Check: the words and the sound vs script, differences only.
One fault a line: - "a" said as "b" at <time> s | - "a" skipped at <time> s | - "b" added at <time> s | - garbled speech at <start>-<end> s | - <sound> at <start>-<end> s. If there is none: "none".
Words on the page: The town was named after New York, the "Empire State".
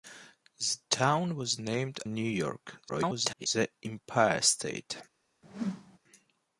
- "after" skipped at 2.0 s
- garbled speech at 2.9-3.5 s
- whoosh at 5.4-6.0 s